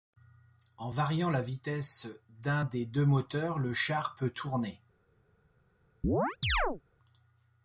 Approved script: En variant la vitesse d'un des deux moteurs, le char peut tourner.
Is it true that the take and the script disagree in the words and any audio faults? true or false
true